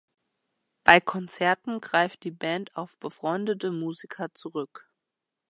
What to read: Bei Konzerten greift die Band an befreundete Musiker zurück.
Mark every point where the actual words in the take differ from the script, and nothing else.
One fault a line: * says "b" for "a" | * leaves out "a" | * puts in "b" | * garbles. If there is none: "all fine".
* says "auf" for "an"